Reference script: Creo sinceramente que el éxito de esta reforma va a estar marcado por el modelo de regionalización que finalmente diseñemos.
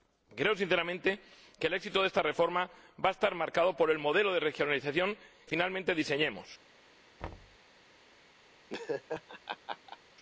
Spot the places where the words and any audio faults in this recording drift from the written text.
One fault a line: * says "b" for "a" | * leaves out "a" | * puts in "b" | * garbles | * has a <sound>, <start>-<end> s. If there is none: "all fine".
* leaves out "que"
* has a thud, 7.2-7.6 s
* has a laugh, 8.7-10.0 s